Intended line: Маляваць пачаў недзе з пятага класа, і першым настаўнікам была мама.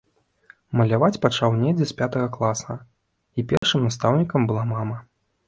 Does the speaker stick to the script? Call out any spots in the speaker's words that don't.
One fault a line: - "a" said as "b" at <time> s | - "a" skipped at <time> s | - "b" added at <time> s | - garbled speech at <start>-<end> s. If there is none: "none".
none